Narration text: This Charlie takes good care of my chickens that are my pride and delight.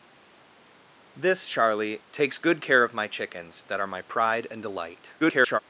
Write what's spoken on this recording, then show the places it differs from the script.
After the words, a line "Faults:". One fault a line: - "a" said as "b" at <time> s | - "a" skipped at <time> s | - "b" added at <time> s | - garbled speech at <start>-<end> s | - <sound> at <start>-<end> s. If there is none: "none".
This Charlie takes good care of my chickens that are my pride and delight. [garbled]
Faults:
- garbled speech at 5.2-5.6 s